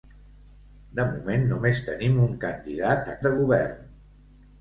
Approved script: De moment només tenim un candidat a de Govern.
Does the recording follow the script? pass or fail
pass